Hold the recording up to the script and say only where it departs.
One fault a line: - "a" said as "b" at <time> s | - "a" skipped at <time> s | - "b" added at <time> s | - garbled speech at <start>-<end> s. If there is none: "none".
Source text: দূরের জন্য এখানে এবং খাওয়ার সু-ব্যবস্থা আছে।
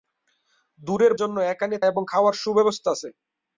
none